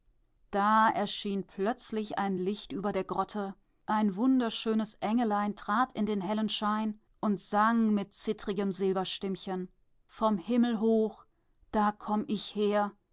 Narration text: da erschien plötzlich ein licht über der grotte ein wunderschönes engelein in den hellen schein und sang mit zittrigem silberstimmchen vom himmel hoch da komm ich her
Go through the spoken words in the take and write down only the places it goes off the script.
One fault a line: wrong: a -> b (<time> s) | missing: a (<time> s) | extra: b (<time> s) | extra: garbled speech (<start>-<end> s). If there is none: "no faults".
extra: trat (5.6 s)